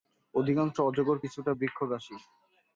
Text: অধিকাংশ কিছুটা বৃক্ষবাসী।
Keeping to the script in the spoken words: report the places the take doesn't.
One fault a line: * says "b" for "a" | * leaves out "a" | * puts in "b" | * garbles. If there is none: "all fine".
* puts in "অজগর"